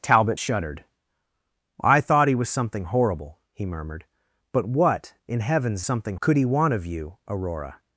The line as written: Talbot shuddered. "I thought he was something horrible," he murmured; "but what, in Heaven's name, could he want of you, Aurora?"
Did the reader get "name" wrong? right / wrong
wrong